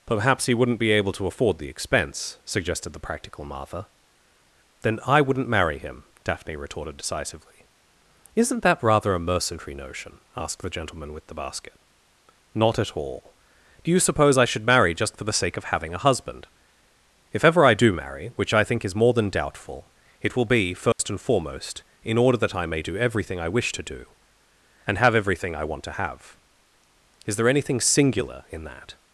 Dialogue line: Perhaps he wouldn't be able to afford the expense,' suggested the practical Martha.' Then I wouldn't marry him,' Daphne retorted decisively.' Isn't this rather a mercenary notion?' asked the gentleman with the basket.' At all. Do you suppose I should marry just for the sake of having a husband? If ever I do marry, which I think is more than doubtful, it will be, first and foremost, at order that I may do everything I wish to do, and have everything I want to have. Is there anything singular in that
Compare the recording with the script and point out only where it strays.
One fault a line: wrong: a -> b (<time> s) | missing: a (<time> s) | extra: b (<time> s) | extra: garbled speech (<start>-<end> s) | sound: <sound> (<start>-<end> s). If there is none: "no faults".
wrong: this -> that (8.6 s)
extra: Not (12.6 s)
sound: dropout (20.9-21.0 s)
wrong: at -> in (22.0 s)